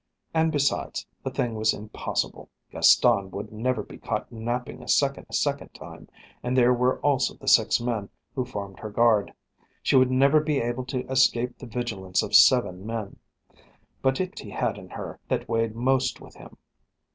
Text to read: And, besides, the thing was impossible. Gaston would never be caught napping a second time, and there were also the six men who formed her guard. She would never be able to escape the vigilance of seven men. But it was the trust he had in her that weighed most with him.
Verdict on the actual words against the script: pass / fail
fail